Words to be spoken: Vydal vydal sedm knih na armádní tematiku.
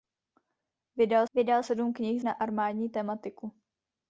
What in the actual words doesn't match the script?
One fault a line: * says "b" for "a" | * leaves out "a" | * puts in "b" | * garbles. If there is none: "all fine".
all fine